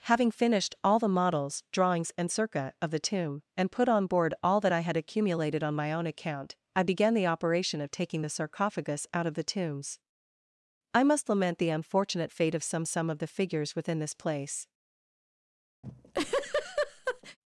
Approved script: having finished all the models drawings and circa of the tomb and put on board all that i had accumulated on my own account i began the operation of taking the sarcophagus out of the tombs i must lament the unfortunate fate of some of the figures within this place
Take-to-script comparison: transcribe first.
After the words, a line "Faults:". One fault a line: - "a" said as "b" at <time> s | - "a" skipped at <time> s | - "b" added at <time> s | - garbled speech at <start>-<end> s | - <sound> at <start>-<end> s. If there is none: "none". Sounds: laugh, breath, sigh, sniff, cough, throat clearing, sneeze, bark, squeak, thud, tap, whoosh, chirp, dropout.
having finished all the models drawings and circa of the tomb and put on board all that i had accumulated on my own account i began the operation of taking the sarcophagus out of the tombs i must lament the unfortunate fate of some some of the figures within this place
Faults:
- "some" added at 12.9 s
- laugh at 15.8-17.4 s